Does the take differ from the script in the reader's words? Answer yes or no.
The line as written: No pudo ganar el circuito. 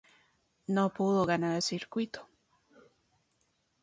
no